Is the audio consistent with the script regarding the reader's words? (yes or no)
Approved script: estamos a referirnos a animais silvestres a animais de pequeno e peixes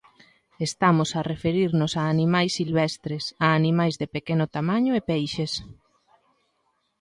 no